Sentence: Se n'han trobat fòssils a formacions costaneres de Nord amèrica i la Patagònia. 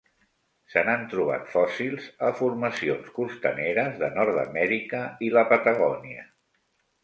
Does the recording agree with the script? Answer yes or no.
yes